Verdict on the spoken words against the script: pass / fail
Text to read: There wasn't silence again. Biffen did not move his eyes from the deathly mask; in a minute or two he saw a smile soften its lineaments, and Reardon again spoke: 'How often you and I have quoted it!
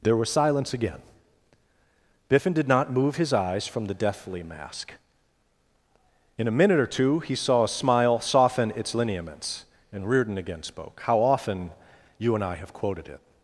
fail